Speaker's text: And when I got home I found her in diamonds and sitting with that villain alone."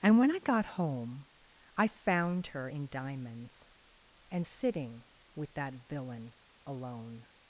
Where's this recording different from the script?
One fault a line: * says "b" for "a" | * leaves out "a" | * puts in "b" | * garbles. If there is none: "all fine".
all fine